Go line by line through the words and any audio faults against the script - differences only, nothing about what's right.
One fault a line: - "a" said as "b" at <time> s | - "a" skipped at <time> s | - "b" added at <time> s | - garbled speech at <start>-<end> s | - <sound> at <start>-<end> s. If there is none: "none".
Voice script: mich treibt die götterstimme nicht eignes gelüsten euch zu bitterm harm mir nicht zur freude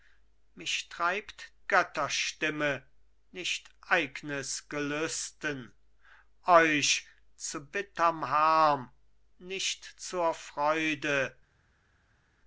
- "die" skipped at 1.5 s
- "mir" skipped at 8.9 s